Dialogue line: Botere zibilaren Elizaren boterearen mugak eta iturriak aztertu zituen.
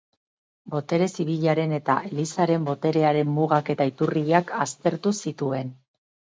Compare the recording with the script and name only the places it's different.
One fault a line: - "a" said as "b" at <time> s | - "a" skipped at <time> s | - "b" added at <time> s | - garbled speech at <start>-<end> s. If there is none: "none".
- "eta" added at 1.8 s